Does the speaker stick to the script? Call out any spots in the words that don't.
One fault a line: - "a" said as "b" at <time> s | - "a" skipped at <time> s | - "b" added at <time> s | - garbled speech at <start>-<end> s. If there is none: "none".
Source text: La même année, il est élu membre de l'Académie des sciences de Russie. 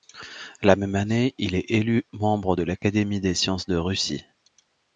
none